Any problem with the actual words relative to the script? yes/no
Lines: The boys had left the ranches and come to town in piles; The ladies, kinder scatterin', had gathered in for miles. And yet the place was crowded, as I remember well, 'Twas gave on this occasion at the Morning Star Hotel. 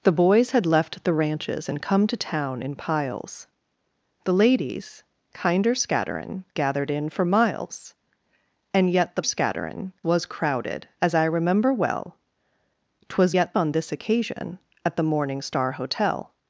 yes